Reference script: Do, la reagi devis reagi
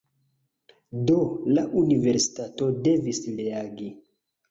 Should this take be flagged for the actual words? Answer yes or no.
yes